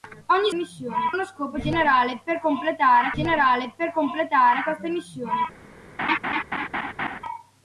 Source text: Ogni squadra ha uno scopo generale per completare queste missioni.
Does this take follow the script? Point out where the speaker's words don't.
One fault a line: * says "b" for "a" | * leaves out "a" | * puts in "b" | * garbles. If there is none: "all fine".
* says "missioni" for "squadra"
* puts in "generale per completare"